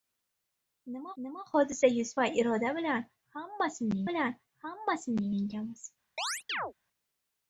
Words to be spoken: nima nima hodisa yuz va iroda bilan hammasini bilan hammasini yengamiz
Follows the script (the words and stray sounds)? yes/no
no